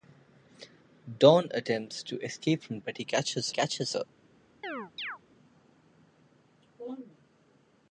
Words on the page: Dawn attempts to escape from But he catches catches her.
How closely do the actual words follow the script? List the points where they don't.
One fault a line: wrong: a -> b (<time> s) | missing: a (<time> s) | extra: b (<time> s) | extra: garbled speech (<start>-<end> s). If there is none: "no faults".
no faults